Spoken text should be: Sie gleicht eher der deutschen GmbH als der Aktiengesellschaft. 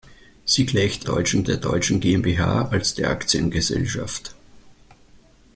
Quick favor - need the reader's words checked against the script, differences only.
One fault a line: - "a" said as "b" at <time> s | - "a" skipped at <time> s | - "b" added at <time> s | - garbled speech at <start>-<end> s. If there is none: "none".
- "eher" said as "deutschen" at 1.0 s